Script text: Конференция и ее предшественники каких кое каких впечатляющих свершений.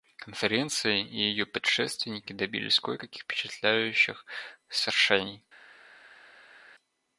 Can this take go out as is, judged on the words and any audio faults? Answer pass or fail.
fail